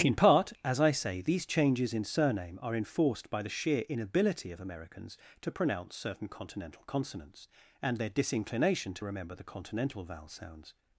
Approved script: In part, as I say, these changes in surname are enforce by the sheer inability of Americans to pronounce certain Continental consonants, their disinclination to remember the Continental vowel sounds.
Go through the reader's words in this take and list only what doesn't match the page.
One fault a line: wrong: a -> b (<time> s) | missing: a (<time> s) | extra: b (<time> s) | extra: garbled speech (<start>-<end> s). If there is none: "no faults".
wrong: enforce -> enforced (2.8 s)
extra: and (7.8 s)